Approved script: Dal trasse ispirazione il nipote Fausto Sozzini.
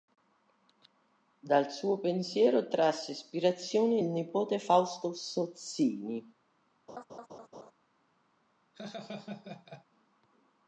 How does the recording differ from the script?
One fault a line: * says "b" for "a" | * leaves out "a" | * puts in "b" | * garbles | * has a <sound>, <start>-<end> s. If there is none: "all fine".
* puts in "suo pensiero"
* has a laugh, 6.9-7.7 s
* has a laugh, 8.7-9.9 s